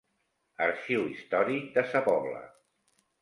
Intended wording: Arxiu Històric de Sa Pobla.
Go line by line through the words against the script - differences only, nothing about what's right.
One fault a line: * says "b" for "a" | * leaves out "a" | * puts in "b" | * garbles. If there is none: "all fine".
all fine